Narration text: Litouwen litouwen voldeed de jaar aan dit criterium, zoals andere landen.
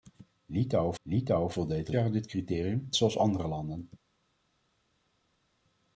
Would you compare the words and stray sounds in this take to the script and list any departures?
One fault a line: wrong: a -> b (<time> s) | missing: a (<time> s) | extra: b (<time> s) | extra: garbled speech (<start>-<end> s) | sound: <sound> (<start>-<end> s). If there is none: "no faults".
no faults